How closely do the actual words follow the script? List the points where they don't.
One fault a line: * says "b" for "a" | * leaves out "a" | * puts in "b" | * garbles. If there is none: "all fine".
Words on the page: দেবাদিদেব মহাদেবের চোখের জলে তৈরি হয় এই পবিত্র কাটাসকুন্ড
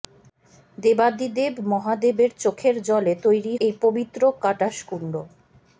* leaves out "হয়"